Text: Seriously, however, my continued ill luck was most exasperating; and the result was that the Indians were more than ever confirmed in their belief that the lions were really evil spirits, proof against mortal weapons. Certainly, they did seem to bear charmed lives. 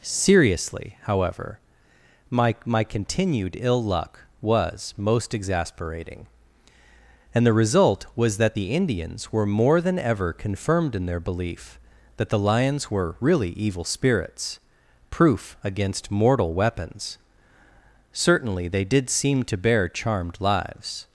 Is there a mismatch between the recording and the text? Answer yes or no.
yes